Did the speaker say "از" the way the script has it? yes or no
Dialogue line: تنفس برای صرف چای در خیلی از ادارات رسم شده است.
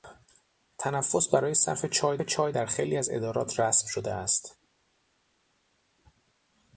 yes